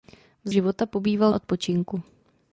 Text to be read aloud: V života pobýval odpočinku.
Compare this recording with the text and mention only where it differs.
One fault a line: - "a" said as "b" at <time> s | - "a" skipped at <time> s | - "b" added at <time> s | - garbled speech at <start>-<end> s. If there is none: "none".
none